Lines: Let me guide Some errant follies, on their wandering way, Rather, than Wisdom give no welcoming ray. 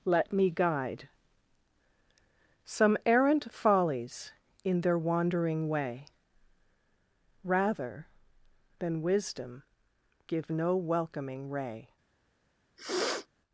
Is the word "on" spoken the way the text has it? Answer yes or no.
no